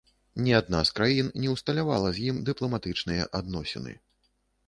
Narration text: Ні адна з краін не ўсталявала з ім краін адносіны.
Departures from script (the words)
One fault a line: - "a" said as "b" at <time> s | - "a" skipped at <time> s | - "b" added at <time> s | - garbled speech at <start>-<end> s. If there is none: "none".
- "краін" said as "дыпламатычныя" at 2.5 s